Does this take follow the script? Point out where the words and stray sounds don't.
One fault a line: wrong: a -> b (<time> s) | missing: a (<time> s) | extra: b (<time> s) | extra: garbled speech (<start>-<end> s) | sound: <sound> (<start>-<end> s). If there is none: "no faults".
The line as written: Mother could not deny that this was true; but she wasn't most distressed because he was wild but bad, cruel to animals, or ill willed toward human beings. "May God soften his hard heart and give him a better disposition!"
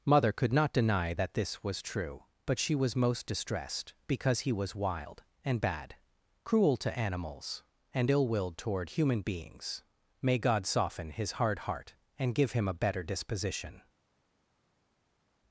wrong: wasn't -> was (2.7 s)
wrong: but -> and (5.5 s)
wrong: or -> and (7.9 s)